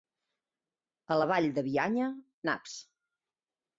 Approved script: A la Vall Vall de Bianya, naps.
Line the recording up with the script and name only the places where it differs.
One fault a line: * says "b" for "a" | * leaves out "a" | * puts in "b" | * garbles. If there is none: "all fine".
* leaves out "Vall"